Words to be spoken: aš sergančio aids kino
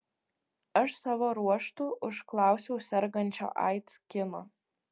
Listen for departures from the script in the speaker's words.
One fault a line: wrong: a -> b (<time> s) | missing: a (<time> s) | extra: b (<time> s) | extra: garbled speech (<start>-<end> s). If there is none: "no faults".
extra: savo ruožtu užklausiau (1.0 s)